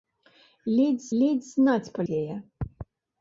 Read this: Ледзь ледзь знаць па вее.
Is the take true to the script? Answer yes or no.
yes